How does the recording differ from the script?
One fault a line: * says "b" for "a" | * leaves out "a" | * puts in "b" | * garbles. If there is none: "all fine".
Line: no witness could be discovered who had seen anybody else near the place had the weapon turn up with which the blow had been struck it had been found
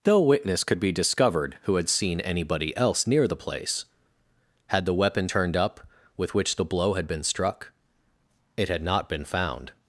* says "turned" for "turn"
* puts in "not"